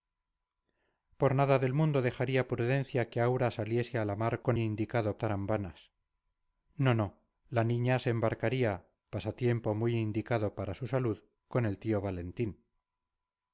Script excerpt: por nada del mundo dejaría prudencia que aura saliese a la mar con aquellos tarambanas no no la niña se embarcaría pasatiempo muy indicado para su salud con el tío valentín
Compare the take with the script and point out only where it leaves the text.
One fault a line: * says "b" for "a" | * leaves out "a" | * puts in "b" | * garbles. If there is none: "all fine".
* says "indicado" for "aquellos"